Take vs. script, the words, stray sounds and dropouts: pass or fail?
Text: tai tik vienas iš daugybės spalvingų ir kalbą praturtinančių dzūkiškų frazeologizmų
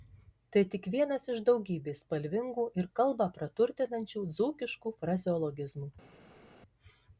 pass